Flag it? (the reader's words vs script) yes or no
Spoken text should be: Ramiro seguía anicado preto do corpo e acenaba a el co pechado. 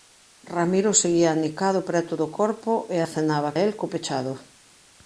no